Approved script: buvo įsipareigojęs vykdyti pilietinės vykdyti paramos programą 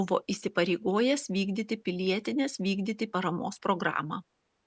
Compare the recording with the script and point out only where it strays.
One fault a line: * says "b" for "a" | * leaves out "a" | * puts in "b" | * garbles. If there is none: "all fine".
all fine